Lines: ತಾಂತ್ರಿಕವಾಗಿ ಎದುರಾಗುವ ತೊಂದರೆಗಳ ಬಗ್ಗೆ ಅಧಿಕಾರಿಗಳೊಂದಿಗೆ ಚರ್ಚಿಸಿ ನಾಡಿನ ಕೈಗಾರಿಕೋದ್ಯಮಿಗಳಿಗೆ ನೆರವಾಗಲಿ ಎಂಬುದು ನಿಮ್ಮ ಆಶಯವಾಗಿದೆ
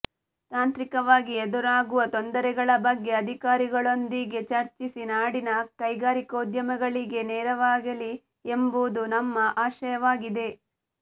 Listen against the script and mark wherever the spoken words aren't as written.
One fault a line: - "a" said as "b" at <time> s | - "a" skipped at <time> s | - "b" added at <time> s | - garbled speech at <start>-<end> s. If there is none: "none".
- "ನಿಮ್ಮ" said as "ನಮ್ಮ" at 9.2 s